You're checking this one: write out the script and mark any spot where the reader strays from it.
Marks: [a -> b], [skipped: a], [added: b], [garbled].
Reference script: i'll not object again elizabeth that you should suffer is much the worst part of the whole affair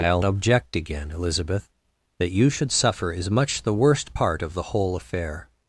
i'll [skipped: not] object again elizabeth that you should suffer is much the worst part of the whole affair